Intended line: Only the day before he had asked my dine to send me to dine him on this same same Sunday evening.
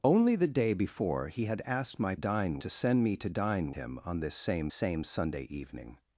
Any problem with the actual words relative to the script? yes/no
no